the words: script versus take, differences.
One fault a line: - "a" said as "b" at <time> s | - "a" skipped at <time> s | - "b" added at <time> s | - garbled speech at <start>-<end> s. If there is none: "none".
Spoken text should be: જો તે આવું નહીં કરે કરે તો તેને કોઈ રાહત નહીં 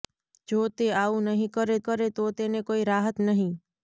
none